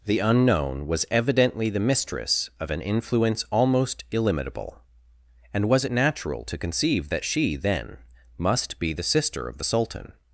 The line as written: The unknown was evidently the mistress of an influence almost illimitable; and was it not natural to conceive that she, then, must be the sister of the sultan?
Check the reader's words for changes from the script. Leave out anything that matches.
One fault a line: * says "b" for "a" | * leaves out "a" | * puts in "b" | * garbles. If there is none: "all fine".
* leaves out "not"